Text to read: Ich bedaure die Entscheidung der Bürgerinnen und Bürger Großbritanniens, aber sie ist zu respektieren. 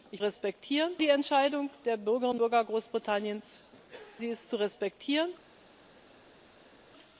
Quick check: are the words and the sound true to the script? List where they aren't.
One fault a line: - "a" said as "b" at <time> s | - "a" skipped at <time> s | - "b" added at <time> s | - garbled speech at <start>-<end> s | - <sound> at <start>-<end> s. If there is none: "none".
- "bedaure" said as "respektieren" at 0.2 s
- "und" skipped at 2.4 s
- "aber" skipped at 3.6 s